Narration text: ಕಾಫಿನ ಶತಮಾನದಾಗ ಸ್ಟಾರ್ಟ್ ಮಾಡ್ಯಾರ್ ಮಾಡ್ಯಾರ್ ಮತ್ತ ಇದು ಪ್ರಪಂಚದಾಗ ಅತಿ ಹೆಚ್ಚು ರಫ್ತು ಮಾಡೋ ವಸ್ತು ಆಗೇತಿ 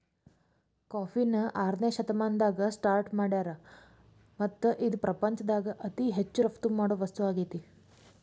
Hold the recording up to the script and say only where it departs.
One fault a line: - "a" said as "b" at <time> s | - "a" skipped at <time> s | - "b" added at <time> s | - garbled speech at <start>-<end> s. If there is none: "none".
- "ಆರನೇ" added at 1.6 s
- "ಮಾಡ್ಯಾರ್" skipped at 3.5 s